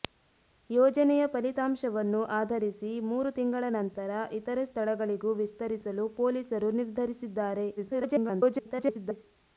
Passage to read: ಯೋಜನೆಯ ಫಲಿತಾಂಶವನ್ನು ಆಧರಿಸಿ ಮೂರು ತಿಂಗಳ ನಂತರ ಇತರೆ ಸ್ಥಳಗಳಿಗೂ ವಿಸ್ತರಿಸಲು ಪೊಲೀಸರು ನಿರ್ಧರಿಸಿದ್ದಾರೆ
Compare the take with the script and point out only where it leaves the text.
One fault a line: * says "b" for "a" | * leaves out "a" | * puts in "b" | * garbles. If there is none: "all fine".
* garbles